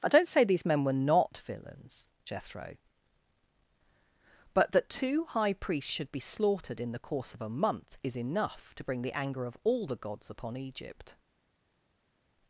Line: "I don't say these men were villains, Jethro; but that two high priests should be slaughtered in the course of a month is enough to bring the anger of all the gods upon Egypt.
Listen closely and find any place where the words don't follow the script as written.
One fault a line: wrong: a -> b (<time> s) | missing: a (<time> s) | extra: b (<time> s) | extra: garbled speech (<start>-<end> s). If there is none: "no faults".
extra: not (0.9 s)